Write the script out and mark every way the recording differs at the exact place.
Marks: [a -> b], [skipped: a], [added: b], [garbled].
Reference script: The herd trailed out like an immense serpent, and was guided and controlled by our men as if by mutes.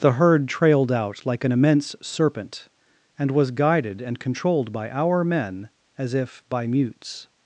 The herd trailed out like an immense serpent, and was guided and controlled by our men as if by mutes.